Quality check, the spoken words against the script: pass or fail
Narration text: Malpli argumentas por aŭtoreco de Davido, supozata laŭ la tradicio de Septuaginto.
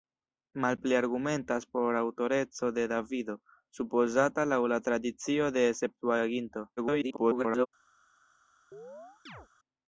fail